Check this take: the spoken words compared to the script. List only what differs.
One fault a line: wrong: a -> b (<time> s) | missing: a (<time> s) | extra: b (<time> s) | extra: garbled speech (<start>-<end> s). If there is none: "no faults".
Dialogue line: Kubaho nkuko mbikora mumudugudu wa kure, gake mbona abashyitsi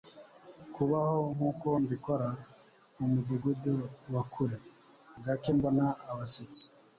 no faults